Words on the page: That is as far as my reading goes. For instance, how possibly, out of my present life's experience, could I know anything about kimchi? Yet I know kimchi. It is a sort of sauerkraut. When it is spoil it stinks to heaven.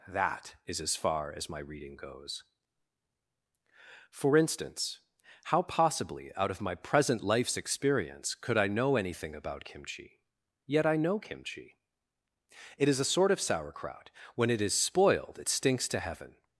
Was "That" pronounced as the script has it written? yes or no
yes